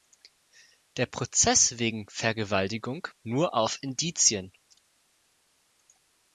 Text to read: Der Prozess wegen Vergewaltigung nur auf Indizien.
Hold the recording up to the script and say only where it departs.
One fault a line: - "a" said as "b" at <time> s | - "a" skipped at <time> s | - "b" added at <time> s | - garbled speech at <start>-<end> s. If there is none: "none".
none